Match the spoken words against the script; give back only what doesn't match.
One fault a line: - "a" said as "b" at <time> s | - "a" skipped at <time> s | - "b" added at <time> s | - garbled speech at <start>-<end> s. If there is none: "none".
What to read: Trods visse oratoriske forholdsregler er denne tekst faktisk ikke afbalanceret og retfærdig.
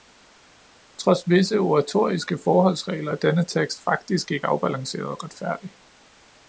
none